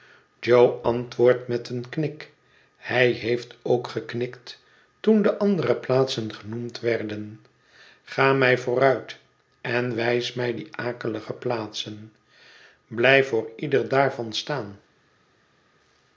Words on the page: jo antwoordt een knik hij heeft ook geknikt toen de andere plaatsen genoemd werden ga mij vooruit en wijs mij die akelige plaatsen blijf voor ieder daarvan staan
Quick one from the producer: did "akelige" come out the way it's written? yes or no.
yes